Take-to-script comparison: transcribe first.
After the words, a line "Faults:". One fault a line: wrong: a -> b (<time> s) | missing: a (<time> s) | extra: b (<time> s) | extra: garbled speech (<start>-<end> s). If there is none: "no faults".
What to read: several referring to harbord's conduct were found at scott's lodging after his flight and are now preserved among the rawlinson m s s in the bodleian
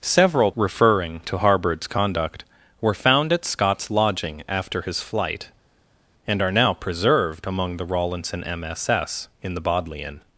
several referring to harbord's conduct were found at scott's lodging after his flight and are now preserved among the rawlinson m s s in the bodleian
Faults:
no faults